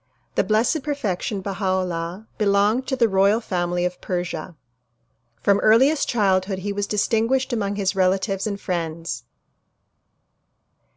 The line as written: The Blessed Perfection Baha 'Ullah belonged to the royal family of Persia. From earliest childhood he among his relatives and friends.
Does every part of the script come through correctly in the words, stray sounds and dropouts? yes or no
no